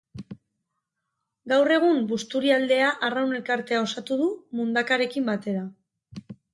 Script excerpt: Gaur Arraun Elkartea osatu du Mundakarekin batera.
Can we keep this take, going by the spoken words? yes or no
no